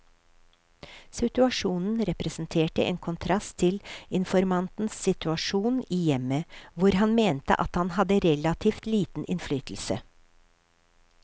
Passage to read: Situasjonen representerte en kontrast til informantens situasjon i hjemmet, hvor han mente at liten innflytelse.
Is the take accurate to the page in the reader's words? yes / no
no